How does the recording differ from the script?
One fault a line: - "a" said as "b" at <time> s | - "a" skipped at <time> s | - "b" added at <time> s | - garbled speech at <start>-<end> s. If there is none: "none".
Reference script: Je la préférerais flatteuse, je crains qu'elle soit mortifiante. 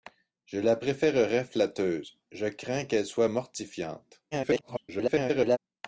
- garbled speech at 4.3-5.6 s